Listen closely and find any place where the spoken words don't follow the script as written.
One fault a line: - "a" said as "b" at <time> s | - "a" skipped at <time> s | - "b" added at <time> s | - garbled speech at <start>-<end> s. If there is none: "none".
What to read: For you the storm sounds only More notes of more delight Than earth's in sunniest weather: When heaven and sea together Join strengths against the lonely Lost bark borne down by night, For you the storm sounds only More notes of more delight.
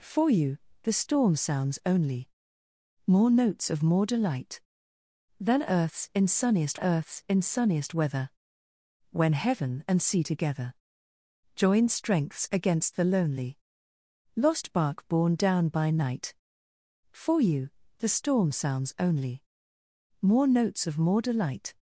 - "earth's in sunniest" added at 6.7 s